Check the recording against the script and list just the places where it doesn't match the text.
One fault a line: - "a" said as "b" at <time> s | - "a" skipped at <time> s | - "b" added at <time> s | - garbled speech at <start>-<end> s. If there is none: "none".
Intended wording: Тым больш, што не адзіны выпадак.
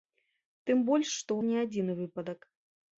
none